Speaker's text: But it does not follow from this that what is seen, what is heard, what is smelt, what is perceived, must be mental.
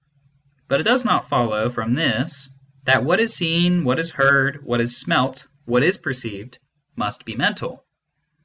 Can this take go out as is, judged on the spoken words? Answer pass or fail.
pass